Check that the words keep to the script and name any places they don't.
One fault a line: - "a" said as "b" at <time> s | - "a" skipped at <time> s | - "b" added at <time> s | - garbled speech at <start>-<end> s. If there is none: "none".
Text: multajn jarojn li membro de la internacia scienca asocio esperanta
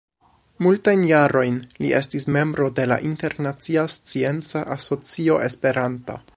- "estis" added at 2.0 s